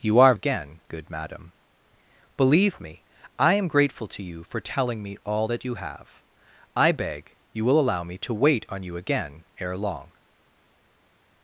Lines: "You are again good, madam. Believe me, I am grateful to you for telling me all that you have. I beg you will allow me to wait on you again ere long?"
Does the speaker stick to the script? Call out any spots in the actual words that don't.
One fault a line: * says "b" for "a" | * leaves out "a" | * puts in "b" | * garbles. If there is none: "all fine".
all fine